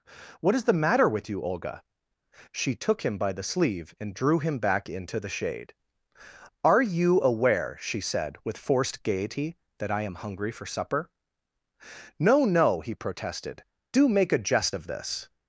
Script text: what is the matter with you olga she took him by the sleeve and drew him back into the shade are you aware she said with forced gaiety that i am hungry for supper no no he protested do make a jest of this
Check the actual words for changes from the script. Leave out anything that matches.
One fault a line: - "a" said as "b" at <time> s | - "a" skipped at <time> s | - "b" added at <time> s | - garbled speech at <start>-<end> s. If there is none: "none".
none